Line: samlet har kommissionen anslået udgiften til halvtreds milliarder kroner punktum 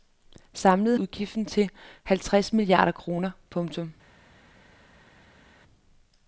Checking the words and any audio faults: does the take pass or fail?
fail